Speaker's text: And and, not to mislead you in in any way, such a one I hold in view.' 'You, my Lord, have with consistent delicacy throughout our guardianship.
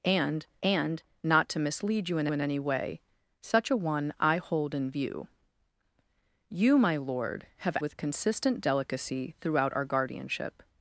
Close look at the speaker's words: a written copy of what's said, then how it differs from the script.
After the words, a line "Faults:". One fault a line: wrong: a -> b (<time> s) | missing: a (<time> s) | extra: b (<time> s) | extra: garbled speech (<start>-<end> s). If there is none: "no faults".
And and, not to mislead you in in any way, such a one I hold in view.' 'You, my Lord, have with consistent delicacy throughout our guardianship.
Faults:
no faults